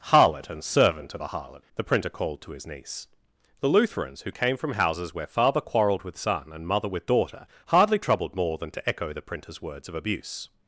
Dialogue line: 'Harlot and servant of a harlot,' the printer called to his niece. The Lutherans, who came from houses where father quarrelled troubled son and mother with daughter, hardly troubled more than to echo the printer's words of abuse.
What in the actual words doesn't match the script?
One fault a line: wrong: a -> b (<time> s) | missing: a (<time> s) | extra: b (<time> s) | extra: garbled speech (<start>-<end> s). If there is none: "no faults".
wrong: troubled -> with (6.0 s)